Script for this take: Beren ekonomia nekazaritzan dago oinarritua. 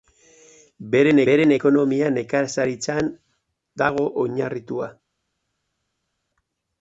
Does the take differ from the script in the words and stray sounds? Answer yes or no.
yes